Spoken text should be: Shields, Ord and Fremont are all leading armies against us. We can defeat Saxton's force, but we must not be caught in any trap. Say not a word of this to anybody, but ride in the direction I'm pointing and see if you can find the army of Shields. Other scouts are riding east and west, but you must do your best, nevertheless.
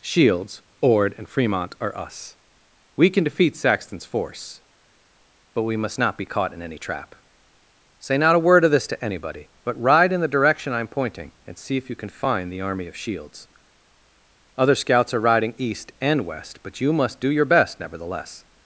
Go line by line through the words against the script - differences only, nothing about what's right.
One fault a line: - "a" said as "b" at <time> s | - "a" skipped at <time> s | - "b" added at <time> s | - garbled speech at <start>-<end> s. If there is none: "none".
- "all leading armies against" skipped at 1.9 s